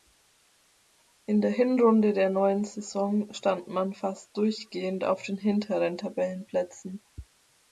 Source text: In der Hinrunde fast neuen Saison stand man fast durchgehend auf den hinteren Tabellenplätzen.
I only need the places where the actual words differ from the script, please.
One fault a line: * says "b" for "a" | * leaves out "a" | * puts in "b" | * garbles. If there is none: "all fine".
* says "der" for "fast"